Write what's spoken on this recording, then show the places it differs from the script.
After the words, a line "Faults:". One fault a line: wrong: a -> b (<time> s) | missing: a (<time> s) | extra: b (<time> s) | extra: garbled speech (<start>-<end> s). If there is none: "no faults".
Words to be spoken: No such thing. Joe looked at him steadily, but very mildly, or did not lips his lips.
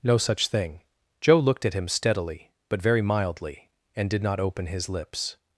No such thing. Joe looked at him steadily, but very mildly, and did not open his lips.
Faults:
wrong: or -> and (3.9 s)
wrong: lips -> open (4.4 s)